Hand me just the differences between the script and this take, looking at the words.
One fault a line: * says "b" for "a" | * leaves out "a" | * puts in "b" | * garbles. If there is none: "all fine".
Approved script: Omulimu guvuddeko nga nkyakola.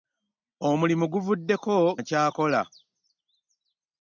* leaves out "nga"